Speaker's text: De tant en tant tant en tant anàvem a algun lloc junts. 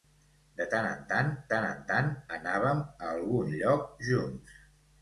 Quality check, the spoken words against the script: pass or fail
pass